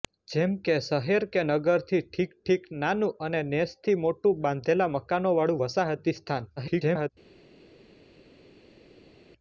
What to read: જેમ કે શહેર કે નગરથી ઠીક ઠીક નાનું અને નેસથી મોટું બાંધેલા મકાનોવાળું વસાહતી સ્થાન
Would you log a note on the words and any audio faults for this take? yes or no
yes